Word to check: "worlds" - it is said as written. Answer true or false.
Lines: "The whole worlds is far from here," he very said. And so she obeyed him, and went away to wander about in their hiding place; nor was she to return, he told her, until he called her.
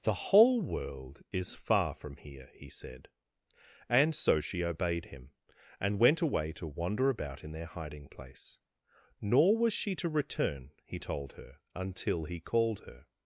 false